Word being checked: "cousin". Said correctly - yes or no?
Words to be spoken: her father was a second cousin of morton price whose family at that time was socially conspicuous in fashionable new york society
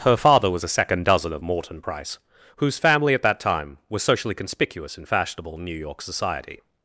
no